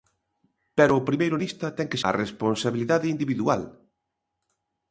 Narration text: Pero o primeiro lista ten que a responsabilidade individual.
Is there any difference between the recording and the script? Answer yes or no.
no